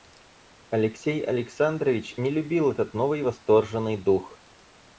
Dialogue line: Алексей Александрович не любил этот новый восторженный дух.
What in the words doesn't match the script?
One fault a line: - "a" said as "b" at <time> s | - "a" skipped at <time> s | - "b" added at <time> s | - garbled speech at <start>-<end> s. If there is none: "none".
none